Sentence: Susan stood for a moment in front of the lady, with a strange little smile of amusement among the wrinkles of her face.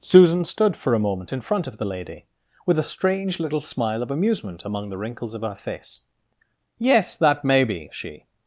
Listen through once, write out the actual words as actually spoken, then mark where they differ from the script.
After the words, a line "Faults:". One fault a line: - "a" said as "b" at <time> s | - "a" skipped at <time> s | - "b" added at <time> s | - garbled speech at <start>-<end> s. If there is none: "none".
Susan stood for a moment in front of the lady, with a strange little smile of amusement among the wrinkles of her face. "Yes, that may be," she
Faults:
- "Yes that may be she" added at 6.8 s